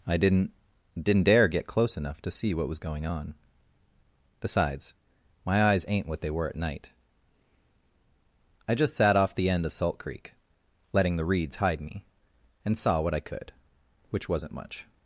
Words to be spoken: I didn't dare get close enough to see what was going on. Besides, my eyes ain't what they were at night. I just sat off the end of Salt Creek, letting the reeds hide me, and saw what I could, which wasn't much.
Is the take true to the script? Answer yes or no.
no